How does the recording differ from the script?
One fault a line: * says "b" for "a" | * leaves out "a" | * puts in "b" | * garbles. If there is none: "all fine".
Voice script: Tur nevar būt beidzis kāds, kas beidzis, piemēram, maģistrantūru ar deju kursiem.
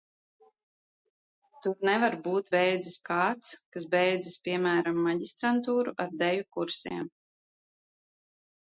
all fine